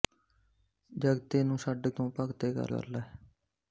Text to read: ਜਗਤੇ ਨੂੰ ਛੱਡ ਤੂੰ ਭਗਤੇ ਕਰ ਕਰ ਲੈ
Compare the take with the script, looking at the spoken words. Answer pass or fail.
pass